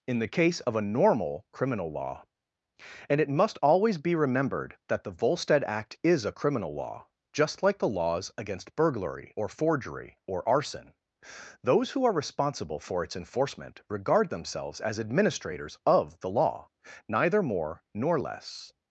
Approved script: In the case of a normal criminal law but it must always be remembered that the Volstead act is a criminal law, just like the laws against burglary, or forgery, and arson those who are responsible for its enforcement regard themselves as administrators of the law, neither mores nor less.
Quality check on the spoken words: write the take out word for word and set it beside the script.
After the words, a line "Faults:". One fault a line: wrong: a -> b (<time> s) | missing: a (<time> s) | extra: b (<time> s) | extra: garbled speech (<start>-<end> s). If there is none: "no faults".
In the case of a normal criminal law and it must always be remembered that the Volstead act is a criminal law, just like the laws against burglary, or forgery, or arson those who are responsible for its enforcement regard themselves as administrators of the law, neither more nor less.
Faults:
wrong: but -> and (3.1 s)
wrong: and -> or (10.2 s)
wrong: mores -> more (17.4 s)